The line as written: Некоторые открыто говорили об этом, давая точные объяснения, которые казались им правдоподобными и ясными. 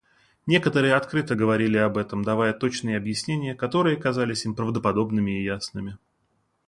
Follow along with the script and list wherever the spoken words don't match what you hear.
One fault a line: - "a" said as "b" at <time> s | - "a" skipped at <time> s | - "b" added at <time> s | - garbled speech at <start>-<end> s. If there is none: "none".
none